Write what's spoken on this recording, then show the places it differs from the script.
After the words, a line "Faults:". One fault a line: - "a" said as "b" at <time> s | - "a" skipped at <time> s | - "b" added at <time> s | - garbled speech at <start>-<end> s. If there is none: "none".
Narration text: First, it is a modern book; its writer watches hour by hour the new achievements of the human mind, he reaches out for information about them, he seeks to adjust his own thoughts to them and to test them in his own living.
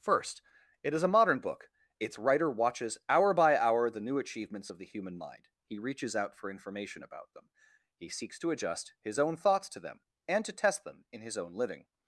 First, it is a modern book; its writer watches hour by hour the new achievements of the human mind, he reaches out for information about them, he seeks to adjust his own thoughts to them and to test them in his own living.
Faults:
none